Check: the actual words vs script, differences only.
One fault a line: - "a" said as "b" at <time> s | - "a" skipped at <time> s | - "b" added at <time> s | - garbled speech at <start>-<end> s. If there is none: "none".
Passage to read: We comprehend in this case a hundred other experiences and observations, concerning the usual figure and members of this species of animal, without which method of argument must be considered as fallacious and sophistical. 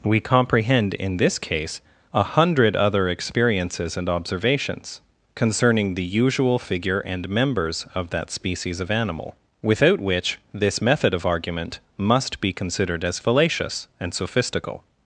- "this" said as "that" at 8.1 s
- "this" added at 10.5 s